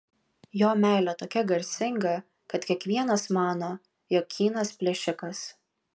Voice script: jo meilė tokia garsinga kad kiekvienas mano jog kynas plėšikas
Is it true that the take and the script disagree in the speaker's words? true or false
false